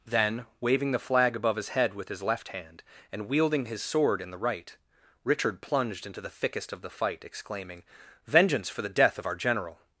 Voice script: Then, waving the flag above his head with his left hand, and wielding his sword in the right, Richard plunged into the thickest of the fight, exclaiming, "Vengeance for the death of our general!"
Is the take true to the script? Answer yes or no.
yes